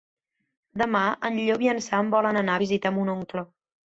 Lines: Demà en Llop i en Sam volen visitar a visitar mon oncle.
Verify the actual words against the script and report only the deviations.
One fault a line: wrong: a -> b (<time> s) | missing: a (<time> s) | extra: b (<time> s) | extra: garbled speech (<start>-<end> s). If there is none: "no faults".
wrong: visitar -> anar (2.4 s)